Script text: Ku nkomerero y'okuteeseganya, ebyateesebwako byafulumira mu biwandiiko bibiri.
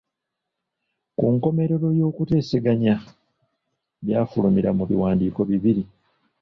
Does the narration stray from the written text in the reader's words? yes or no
yes